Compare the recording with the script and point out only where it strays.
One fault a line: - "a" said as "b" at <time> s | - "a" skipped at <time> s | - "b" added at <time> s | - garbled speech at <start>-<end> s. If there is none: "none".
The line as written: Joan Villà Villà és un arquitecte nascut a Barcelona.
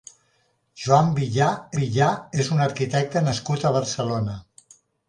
none